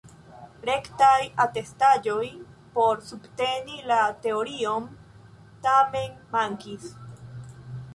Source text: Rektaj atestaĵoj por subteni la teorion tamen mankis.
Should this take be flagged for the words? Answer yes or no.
no